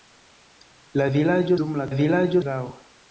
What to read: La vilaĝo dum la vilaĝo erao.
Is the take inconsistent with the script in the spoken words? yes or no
no